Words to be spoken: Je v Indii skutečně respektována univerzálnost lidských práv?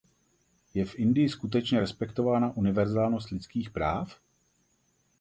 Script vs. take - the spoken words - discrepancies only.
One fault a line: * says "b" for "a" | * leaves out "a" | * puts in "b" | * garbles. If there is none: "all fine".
all fine